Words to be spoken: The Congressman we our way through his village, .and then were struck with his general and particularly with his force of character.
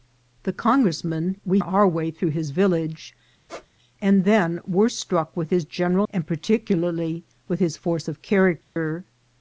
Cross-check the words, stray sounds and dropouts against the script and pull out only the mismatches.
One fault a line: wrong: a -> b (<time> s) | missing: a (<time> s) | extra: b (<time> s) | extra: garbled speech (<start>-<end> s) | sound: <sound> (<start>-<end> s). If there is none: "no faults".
sound: squeak (3.5-3.7 s)
sound: dropout (8.6-8.8 s)